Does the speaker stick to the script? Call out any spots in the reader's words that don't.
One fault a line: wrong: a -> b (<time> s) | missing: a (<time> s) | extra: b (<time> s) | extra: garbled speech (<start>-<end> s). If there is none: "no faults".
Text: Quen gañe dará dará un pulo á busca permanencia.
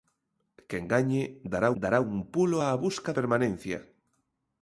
no faults